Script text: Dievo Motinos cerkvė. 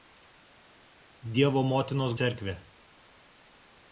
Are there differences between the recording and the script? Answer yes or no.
no